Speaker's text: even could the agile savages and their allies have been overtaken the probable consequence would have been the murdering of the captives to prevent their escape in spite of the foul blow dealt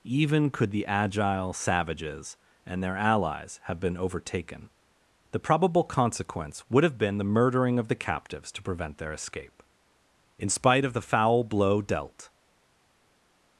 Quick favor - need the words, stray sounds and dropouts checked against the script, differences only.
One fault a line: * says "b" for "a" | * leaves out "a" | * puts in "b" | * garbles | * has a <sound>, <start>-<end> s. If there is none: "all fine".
all fine